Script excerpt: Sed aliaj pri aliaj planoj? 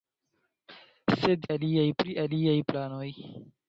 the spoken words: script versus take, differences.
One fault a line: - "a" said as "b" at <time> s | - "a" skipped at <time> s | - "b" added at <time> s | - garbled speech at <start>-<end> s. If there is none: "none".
none